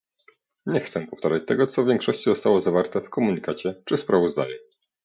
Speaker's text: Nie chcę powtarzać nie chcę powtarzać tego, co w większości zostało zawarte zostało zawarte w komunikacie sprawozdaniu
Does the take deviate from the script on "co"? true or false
false